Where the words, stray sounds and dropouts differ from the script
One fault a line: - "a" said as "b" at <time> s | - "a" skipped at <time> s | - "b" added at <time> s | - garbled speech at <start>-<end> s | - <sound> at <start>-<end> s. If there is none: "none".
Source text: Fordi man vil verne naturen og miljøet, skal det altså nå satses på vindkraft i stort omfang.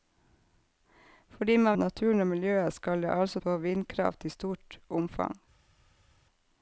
- "vil verne" skipped at 1.8 s
- "nå satses" skipped at 3.4 s